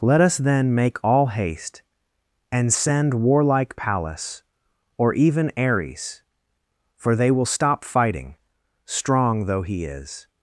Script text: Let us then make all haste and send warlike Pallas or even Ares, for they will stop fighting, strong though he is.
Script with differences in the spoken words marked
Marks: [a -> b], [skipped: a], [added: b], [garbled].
Let us then make all haste and send warlike Pallas or even Ares, for they will stop fighting, strong though he is.